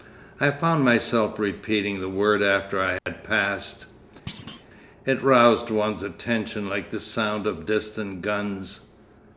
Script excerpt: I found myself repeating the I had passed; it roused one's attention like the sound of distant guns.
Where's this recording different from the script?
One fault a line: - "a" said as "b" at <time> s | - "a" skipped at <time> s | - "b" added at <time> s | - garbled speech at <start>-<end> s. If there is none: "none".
- "word after" added at 2.1 s